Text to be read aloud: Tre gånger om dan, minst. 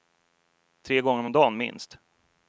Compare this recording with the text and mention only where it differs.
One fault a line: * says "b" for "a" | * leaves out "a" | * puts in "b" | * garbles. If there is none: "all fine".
all fine